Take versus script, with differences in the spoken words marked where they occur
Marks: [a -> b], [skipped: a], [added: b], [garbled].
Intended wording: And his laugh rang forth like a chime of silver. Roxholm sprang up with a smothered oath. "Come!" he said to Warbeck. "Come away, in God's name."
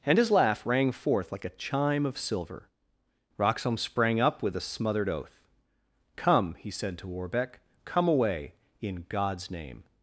And his laugh rang forth like a chime of silver. Roxholm sprang up with a smothered oath. "Come!" he said to Warbeck. "Come away, in God's name."